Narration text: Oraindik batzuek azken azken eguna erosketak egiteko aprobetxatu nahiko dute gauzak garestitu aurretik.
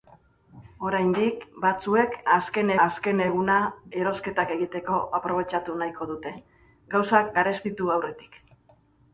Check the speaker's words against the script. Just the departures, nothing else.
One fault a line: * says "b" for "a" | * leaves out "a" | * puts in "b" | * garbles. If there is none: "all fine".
all fine